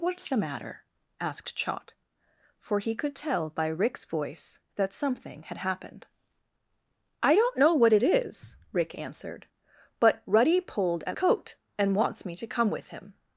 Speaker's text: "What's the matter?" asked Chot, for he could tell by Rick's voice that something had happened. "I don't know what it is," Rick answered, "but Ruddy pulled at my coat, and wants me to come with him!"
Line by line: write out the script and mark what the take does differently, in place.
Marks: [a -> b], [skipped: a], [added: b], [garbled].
"What's the matter?" asked Chot, for he could tell by Rick's voice that something had happened. "I don't know what it is," Rick answered, "but Ruddy pulled at [skipped: my] coat, and wants me to come with him!"